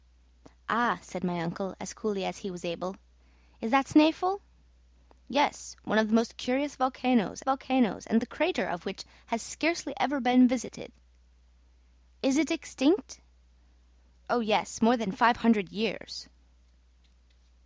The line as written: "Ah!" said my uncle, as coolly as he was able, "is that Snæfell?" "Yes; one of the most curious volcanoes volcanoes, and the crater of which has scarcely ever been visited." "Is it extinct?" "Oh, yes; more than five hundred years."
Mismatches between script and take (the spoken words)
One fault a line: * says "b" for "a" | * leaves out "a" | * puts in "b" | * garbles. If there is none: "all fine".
all fine